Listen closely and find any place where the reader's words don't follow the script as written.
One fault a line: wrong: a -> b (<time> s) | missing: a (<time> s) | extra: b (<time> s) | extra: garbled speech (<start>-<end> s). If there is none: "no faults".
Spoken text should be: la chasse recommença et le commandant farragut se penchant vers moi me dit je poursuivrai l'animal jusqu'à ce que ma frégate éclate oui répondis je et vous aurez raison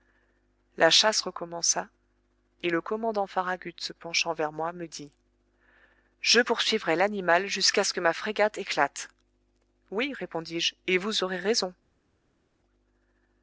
no faults